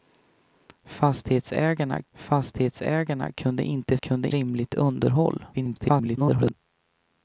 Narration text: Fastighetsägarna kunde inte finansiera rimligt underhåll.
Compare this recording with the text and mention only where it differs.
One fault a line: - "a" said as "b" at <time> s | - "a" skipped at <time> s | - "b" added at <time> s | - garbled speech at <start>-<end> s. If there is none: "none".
- "fastighetsägarna" added at 2.1 s
- "finansiera" said as "kunde" at 4.0 s
- garbled speech at 5.5-6.5 s